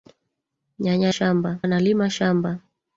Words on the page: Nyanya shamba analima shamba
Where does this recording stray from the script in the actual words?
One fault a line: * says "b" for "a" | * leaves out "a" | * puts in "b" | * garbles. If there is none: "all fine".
all fine